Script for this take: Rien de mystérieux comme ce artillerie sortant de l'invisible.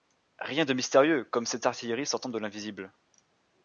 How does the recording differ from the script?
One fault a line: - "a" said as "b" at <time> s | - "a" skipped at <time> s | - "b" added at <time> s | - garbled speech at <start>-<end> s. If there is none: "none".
- "ce" said as "cette" at 1.4 s